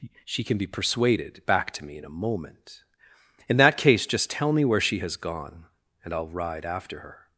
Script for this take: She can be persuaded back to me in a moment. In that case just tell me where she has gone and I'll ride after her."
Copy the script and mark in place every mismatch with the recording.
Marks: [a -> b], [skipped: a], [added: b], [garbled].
She can be persuaded back to me in a moment. In that case just tell me where she has gone and I'll ride after her."